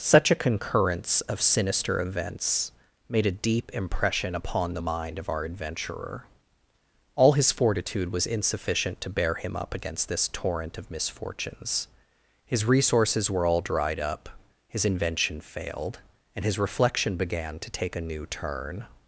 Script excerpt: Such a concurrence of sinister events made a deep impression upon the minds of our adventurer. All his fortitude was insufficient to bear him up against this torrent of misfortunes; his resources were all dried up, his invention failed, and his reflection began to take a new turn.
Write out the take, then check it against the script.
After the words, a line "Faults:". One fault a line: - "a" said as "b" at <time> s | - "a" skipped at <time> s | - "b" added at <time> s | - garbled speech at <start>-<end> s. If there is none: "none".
Such a concurrence of sinister events made a deep impression upon the mind of our adventurer. All his fortitude was insufficient to bear him up against this torrent of misfortunes; his resources were all dried up, his invention failed, and his reflection began to take a new turn.
Faults:
- "minds" said as "mind" at 4.8 s